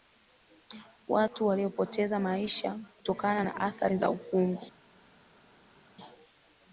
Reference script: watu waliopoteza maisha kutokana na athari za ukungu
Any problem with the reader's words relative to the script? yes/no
no